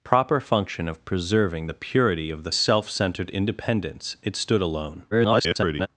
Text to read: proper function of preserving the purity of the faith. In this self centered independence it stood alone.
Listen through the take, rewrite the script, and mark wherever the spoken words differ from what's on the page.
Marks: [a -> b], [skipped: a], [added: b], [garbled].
proper function of preserving the purity of the [skipped: faith. In this] self centered independence it stood alone. [garbled]